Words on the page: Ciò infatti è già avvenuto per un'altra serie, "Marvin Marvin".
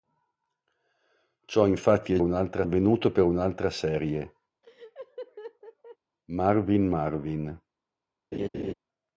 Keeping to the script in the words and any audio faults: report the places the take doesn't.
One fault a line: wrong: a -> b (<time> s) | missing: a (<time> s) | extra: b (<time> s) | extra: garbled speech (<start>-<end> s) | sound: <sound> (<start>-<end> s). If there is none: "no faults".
wrong: già -> un'altra (2.2 s)
sound: laugh (4.6-6.0 s)
sound: laugh (8.3-8.7 s)